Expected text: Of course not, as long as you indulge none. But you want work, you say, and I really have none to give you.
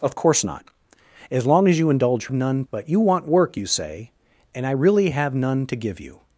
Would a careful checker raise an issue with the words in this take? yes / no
no